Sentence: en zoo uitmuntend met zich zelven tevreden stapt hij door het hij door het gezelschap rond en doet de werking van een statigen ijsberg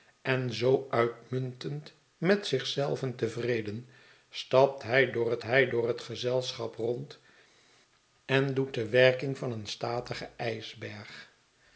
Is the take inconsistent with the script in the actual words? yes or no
no